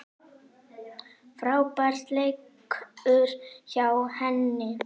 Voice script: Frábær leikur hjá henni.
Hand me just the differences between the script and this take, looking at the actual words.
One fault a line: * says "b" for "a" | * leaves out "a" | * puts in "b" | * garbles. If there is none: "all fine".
all fine